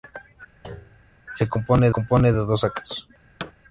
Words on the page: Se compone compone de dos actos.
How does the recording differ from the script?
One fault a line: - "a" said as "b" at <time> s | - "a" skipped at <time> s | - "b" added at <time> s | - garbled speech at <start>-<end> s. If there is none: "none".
none